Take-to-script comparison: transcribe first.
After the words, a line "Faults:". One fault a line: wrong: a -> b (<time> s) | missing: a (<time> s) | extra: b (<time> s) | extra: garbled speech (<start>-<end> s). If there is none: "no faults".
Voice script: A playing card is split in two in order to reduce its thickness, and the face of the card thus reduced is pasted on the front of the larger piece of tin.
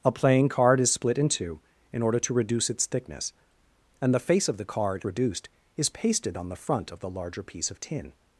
A playing card is split in two in order to reduce its thickness, and the face of the card reduced is pasted on the front of the larger piece of tin.
Faults:
missing: thus (5.0 s)